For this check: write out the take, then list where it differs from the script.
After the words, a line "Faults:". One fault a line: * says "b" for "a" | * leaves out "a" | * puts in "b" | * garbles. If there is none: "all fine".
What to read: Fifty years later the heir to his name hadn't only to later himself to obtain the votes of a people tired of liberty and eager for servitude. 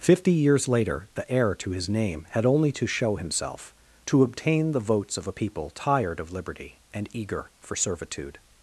Fifty years later the heir to his name had only to show himself to obtain the votes of a people tired of liberty and eager for servitude.
Faults:
* says "had" for "hadn't"
* says "show" for "later"